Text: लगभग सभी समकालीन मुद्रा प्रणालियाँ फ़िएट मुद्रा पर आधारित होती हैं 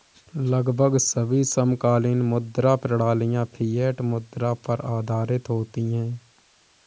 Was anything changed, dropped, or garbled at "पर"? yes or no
no